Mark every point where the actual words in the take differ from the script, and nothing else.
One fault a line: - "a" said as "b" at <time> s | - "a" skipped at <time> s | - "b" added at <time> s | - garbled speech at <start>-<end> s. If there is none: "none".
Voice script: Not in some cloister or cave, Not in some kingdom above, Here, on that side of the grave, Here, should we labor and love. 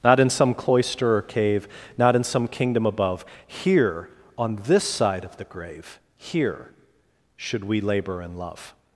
- "that" said as "this" at 4.7 s